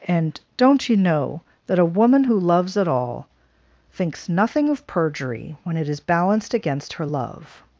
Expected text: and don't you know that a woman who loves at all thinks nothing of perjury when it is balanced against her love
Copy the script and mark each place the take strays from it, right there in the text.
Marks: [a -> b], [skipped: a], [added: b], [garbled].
and don't you know that a woman who loves at all thinks nothing of perjury when it is balanced against her love